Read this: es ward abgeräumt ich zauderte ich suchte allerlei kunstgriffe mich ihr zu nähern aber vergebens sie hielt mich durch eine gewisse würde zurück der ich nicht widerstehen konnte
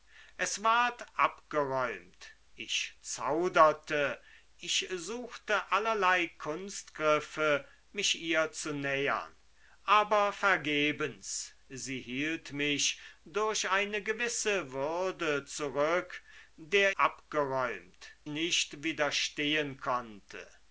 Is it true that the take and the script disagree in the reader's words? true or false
true